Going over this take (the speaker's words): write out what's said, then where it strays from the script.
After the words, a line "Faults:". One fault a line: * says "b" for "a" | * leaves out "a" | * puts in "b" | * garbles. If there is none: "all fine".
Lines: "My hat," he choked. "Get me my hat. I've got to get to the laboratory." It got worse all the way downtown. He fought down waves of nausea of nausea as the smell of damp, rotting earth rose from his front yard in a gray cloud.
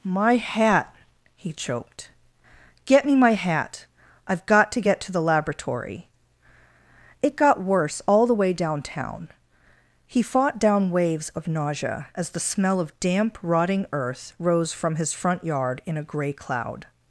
"My hat," he choked. "Get me my hat. I've got to get to the laboratory." It got worse all the way downtown. He fought down waves of nausea as the smell of damp, rotting earth rose from his front yard in a gray cloud.
Faults:
* leaves out "of nausea"